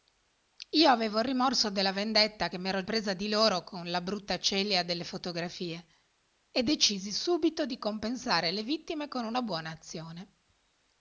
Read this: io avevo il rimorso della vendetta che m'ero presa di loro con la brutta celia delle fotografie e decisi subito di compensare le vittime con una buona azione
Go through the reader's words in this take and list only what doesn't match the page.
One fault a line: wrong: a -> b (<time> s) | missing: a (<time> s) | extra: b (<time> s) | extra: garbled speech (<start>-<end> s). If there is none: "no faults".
no faults